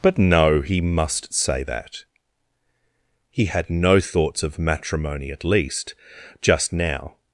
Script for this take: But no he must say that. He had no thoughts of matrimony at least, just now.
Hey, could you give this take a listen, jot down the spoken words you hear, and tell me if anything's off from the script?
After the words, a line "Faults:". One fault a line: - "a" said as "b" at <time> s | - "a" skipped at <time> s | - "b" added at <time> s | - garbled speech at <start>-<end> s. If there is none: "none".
But no he must say that. He had no thoughts of matrimony at least, just now.
Faults:
none